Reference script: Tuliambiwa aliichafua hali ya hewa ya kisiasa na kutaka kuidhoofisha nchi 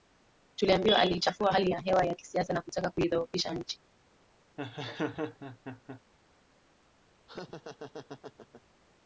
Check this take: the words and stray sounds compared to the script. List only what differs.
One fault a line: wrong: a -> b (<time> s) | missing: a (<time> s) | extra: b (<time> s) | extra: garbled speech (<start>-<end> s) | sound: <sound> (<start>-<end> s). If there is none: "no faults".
sound: laugh (4.6-6.0 s)
sound: laugh (7.3-8.6 s)